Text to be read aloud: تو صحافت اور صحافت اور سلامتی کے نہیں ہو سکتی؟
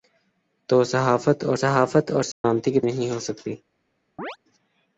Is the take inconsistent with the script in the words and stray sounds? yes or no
yes